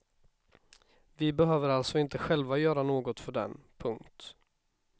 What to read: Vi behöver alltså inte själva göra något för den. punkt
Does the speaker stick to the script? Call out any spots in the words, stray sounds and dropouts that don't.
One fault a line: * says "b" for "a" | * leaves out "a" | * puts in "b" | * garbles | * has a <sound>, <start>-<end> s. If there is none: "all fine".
all fine